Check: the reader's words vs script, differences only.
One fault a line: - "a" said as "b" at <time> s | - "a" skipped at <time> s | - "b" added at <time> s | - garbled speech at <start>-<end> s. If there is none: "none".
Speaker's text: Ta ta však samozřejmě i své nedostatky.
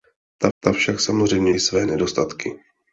none